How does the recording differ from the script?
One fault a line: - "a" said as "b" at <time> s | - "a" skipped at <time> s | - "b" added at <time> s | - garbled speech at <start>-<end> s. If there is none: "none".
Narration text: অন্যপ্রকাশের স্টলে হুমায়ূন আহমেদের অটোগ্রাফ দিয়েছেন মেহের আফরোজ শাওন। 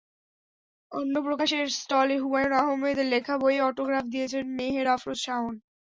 - "লেখা বইয়ে" added at 3.1 s